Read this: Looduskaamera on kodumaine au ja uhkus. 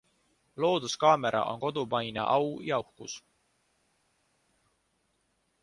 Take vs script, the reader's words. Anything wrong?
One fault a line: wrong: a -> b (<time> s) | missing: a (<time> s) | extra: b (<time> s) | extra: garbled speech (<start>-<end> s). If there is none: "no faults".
no faults